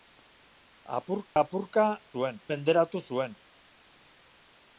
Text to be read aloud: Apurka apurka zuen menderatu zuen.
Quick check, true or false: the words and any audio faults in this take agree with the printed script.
false